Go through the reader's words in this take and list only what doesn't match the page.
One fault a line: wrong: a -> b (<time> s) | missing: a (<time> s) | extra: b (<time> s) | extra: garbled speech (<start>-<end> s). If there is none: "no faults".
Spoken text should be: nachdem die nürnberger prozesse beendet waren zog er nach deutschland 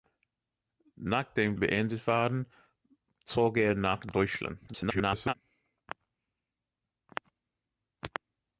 missing: die nürnberger prozesse (1.6 s)
extra: garbled speech (4.7-5.3 s)